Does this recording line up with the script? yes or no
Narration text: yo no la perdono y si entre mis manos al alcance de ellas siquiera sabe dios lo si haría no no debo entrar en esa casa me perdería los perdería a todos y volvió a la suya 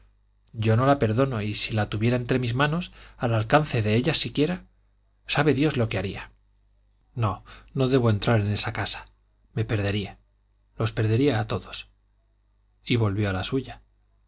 no